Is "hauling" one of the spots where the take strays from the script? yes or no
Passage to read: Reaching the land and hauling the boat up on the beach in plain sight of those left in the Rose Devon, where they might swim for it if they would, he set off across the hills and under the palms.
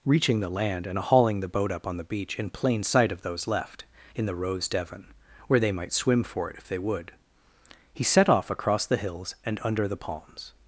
no